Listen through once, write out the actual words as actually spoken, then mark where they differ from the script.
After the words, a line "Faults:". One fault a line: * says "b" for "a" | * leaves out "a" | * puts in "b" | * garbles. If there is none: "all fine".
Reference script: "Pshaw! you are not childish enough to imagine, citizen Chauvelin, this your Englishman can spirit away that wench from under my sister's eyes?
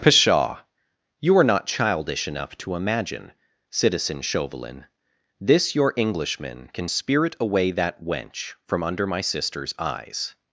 "Pshaw! you are not childish enough to imagine, citizen Chauvelin, this your Englishman can spirit away that wench from under my sister's eyes?
Faults:
all fine